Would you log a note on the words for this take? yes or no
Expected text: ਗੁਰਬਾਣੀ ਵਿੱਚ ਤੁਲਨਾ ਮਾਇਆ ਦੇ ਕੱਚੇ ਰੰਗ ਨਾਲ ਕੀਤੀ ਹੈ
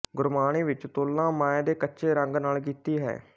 no